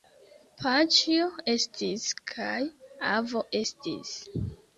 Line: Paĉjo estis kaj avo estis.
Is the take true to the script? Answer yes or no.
yes